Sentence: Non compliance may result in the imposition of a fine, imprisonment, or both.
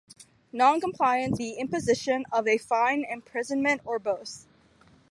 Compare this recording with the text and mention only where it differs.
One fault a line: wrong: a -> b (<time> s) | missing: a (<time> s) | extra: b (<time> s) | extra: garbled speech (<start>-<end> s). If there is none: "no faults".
missing: may result in (1.4 s)